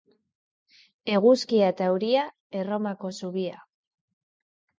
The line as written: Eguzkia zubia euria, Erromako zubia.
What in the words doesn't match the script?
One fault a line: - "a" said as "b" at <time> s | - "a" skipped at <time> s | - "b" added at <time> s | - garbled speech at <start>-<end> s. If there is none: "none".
- "zubia" said as "eta" at 1.7 s